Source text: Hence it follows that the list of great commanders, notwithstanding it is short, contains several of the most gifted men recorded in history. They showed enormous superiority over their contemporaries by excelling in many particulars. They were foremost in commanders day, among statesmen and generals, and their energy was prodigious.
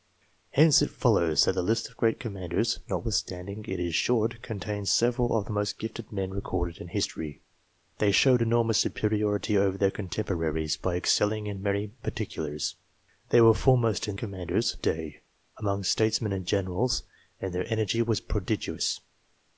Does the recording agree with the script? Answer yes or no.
yes